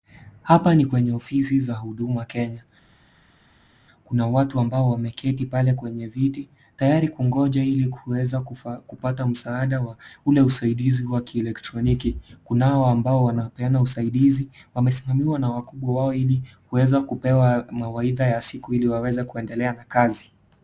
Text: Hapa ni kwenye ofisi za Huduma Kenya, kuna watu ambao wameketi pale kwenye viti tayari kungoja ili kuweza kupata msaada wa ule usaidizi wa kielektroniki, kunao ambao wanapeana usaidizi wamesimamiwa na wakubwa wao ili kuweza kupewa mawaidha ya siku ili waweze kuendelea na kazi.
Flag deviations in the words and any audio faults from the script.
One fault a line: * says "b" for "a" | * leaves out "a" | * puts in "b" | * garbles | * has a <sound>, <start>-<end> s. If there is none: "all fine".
all fine